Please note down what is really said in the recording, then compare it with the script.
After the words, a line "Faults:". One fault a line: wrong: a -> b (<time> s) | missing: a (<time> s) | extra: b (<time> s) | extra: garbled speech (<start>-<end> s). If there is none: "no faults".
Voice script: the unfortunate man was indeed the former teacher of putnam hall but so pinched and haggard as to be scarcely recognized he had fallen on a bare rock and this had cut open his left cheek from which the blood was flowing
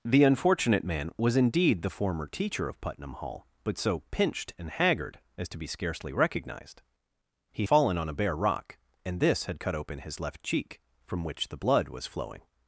the unfortunate man was indeed the former teacher of putnam hall but so pinched and haggard as to be scarcely recognized he fallen on a bare rock and this had cut open his left cheek from which the blood was flowing
Faults:
missing: had (7.6 s)